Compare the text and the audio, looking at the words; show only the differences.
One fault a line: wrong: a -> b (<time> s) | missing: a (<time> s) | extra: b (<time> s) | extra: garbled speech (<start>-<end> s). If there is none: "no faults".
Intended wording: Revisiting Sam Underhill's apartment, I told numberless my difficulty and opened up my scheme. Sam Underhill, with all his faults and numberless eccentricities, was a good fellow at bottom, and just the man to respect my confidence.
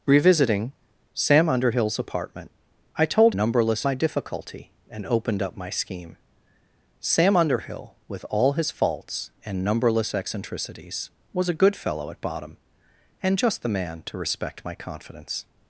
no faults